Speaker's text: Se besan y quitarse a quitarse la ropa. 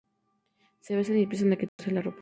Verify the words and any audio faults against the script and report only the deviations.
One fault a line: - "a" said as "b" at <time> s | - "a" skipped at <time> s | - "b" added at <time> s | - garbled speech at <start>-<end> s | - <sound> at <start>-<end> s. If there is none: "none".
- "quitarse" said as "empiezan" at 1.2 s
- dropout at 1.7-1.8 s